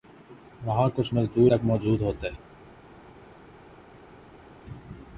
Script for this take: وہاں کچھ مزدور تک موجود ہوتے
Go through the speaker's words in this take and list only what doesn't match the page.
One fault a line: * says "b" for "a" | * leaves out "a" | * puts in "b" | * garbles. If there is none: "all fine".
all fine